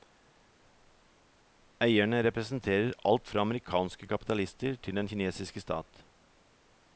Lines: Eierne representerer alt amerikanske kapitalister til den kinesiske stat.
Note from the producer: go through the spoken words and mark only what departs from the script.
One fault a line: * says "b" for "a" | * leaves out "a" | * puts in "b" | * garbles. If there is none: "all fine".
* puts in "fra"